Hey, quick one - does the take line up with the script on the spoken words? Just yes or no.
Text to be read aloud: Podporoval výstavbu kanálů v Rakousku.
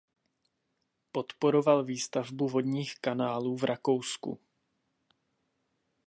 no